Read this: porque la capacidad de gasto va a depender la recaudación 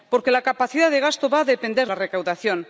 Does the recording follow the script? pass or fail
pass